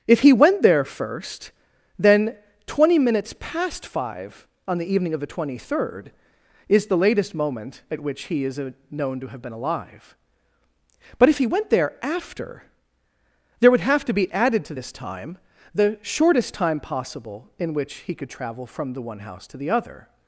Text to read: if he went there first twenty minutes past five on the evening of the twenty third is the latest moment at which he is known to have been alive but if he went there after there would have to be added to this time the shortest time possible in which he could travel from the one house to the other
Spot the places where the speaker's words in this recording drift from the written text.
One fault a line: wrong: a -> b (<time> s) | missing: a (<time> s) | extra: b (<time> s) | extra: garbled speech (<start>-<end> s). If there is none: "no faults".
extra: then (2.0 s)